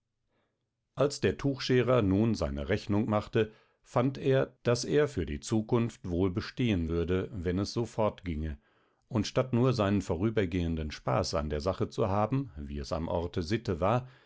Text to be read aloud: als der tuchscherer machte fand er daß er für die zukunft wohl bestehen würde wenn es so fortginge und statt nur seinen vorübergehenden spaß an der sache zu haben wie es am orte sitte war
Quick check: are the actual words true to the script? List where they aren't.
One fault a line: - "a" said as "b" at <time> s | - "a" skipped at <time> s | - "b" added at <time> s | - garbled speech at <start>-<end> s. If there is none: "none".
- "nun seine rechnung" added at 2.0 s